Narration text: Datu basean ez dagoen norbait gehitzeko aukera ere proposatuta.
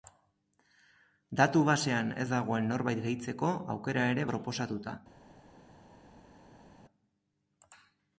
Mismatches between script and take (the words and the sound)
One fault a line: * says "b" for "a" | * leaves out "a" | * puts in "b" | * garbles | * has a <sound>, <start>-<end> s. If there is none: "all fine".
all fine